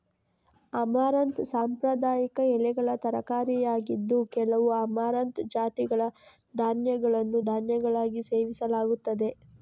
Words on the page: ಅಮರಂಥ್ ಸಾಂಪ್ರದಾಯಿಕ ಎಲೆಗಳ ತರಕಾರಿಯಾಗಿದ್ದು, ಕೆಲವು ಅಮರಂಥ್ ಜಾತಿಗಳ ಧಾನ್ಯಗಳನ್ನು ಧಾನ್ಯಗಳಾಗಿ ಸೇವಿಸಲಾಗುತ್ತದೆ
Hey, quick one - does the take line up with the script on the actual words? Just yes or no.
yes